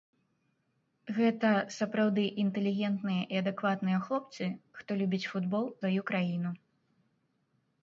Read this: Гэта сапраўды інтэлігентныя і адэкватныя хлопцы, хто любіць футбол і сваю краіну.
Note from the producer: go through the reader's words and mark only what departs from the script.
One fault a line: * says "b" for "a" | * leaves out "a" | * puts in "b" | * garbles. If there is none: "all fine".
* leaves out "і"